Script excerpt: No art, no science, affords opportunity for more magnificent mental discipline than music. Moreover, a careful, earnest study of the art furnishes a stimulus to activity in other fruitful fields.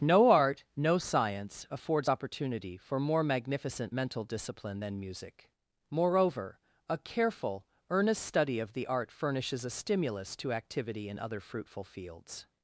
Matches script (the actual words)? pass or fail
pass